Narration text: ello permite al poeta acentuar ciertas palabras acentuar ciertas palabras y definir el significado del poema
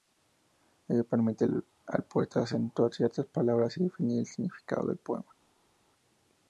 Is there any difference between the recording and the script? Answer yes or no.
yes